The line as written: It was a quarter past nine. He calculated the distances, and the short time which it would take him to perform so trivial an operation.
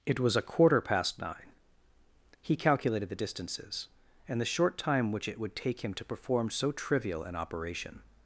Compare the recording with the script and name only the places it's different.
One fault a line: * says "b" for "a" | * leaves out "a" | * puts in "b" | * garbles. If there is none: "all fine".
all fine